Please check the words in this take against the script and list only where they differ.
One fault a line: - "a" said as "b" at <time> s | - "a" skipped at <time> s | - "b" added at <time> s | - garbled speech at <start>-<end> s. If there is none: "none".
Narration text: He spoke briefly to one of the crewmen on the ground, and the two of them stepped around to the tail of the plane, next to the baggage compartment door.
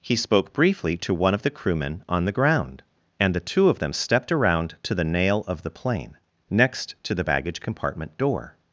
- "tail" said as "nail" at 5.0 s